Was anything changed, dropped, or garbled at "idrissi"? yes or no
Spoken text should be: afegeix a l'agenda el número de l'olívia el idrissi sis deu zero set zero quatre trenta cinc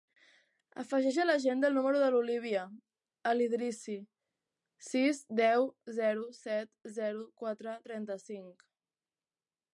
no